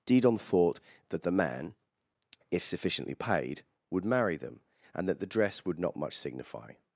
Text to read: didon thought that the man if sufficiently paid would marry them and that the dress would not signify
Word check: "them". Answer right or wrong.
right